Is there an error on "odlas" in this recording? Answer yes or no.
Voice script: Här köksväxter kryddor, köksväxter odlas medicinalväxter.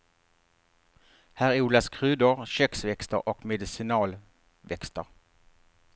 yes